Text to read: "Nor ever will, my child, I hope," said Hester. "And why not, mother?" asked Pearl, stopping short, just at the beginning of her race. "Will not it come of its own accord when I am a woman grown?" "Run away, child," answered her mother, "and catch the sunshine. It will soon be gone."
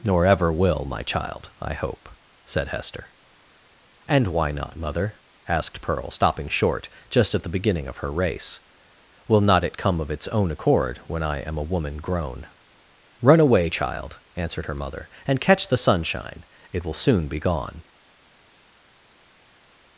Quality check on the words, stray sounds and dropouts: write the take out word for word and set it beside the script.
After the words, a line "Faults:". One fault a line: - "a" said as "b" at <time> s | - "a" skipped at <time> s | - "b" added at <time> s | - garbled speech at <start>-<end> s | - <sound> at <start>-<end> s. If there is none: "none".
"Nor ever will, my child, I hope," said Hester. "And why not, mother?" asked Pearl, stopping short, just at the beginning of her race. "Will not it come of its own accord when I am a woman grown?" "Run away, child," answered her mother, "and catch the sunshine. It will soon be gone."
Faults:
none